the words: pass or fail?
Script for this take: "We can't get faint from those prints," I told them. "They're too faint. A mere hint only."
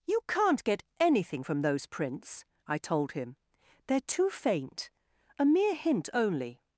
fail